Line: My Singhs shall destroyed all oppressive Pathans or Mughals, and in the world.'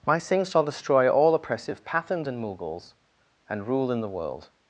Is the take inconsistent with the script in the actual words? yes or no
yes